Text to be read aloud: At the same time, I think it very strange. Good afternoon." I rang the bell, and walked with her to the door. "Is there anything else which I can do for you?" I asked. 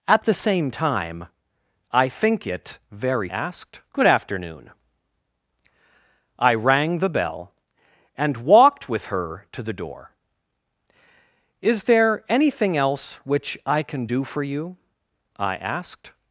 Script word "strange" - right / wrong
wrong